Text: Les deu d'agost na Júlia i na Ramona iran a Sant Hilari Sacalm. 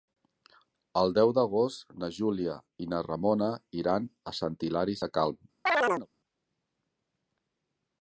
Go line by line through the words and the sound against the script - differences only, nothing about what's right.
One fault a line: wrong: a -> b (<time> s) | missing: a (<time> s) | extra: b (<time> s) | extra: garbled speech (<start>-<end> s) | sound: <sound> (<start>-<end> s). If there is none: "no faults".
wrong: Les -> El (1.0 s)
sound: chirp (5.7-6.1 s)